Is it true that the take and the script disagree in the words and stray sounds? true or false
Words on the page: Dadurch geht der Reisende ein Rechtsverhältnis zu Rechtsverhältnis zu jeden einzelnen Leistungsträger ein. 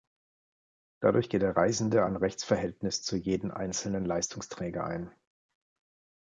true